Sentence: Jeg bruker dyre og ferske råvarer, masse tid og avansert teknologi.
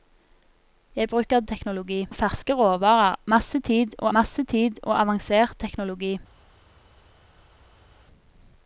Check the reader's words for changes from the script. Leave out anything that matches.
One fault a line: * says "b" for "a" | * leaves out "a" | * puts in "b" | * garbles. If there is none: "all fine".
* says "teknologi" for "dyre"
* puts in "masse tid og"